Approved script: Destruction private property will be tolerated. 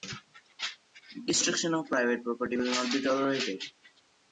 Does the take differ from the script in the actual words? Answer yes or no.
yes